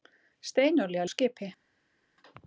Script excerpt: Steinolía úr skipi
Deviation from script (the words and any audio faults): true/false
false